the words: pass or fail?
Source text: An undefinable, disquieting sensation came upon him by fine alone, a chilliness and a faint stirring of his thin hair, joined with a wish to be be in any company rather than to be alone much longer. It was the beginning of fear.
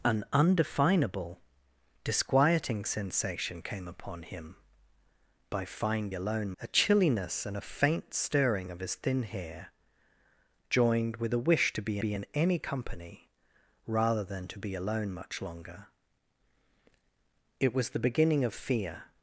pass